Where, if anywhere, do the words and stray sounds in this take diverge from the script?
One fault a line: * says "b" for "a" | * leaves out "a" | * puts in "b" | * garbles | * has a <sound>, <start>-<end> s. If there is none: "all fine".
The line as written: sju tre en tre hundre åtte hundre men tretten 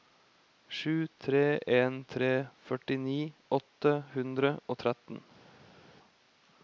* says "førtini" for "hundre"
* says "og" for "men"